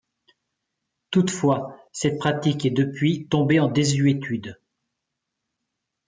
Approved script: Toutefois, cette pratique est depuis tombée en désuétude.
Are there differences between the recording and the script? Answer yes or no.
no